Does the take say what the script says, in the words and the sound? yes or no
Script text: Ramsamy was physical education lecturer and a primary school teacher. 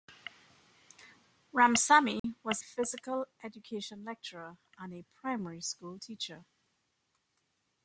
no